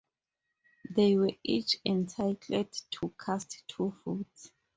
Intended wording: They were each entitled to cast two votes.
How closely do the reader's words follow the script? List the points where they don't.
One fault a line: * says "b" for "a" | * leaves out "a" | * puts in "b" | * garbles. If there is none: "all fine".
all fine